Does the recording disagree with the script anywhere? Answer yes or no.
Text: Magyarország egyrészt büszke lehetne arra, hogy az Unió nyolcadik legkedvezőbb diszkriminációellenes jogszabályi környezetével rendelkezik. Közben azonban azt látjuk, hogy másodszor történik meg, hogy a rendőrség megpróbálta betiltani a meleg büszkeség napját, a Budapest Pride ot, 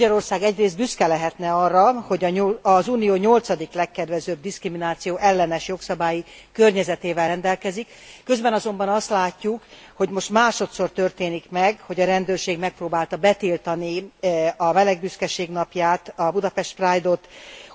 yes